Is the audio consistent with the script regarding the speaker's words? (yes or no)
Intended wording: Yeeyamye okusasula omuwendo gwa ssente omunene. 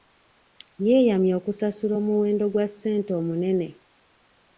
yes